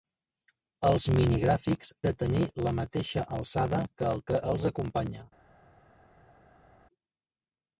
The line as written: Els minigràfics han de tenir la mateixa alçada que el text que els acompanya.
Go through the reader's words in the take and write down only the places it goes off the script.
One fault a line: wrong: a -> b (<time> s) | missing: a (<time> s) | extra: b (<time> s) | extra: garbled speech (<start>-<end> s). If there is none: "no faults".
missing: han (1.9 s)
missing: text (4.2 s)